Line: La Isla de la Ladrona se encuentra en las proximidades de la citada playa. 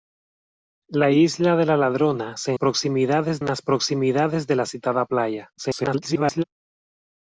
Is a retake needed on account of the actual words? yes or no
yes